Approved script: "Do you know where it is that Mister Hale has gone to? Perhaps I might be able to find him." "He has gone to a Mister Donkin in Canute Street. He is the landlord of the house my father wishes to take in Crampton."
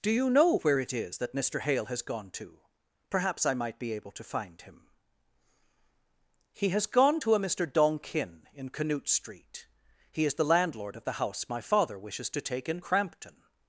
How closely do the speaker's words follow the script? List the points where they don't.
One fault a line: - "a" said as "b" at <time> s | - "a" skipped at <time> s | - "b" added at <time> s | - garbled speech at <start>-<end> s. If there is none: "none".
none